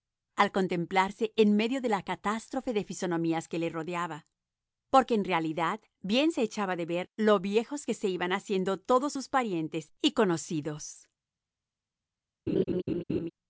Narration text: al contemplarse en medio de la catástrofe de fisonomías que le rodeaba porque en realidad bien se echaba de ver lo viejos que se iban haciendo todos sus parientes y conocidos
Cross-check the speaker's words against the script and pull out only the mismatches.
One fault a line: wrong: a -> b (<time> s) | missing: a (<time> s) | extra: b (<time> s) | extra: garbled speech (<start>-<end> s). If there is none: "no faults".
no faults